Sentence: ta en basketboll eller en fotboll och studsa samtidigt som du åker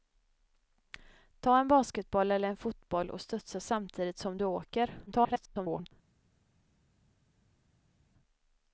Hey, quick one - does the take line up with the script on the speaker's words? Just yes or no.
no